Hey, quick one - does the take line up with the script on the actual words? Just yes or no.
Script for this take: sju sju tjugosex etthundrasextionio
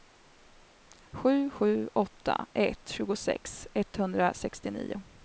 no